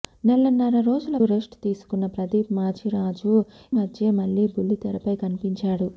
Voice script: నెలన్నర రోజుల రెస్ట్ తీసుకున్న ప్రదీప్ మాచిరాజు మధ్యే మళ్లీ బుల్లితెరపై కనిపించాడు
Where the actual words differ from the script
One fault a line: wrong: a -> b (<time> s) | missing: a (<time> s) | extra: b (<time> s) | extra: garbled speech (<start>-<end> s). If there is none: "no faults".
no faults